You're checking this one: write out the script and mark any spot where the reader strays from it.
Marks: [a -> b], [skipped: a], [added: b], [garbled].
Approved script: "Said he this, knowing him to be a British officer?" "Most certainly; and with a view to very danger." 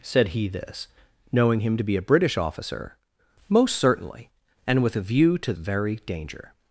"Said he this, knowing him to be a British officer?" "Most certainly; and with a view to very danger."